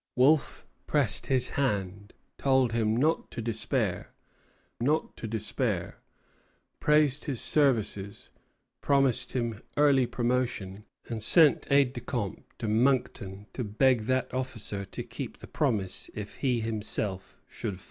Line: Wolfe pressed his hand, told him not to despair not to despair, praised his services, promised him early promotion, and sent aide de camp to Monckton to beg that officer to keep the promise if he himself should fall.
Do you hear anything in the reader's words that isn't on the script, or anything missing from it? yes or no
no